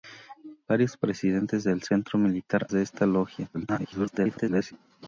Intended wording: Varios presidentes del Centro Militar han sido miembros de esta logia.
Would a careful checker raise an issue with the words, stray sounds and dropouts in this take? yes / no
yes